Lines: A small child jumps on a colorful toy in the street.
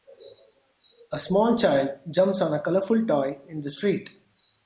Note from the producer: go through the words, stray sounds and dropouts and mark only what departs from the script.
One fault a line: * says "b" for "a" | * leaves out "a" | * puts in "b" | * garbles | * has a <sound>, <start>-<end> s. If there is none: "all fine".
all fine